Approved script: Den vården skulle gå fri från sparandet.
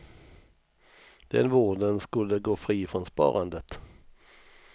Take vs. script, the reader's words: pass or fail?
pass